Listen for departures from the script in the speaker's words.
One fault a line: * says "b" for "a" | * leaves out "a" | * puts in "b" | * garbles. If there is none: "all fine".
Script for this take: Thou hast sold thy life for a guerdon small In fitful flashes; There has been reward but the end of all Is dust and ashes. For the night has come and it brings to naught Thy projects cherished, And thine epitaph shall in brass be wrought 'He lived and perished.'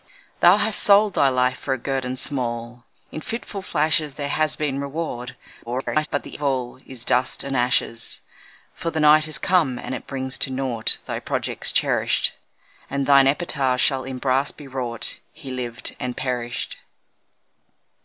* garbles
* leaves out "end"